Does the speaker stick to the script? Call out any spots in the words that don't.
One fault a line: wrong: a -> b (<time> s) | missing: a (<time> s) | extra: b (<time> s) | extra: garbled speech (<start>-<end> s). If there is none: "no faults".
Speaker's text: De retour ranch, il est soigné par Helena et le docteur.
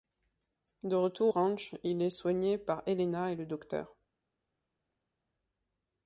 no faults